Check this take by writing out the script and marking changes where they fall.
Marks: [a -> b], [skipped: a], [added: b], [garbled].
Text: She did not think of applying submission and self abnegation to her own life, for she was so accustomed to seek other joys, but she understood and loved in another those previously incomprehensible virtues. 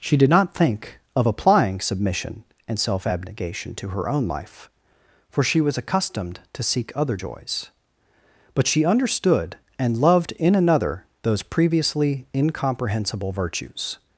She did not think of applying submission and self abnegation to her own life, for she was [skipped: so] accustomed to seek other joys, but she understood and loved in another those previously incomprehensible virtues.